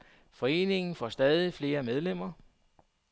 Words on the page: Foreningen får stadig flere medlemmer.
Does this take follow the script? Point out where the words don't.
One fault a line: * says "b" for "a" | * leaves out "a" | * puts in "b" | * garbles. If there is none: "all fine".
all fine